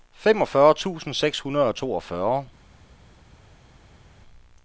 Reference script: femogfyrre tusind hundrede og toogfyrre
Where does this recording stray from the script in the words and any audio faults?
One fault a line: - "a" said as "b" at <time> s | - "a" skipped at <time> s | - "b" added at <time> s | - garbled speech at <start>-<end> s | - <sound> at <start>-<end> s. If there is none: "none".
- "seks" added at 1.1 s